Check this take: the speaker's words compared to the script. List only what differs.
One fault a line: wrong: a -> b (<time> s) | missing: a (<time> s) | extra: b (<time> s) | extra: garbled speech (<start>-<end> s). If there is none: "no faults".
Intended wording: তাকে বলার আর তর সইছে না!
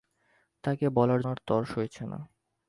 no faults